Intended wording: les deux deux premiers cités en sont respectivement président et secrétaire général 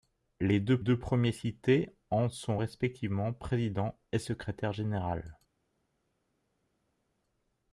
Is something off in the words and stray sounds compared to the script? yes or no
no